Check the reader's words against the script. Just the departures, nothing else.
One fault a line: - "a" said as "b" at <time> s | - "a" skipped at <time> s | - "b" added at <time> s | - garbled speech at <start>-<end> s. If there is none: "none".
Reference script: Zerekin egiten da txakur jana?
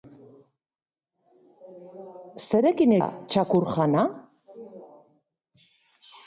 - "egiten" skipped at 3.0 s